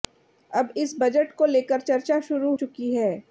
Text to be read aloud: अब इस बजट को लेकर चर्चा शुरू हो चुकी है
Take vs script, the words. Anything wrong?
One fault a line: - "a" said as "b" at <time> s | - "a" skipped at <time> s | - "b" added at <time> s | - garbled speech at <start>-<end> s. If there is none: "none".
- "हो" skipped at 2.5 s